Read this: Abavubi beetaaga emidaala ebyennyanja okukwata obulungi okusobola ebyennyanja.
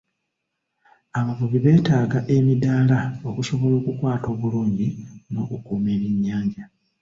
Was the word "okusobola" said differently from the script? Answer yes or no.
yes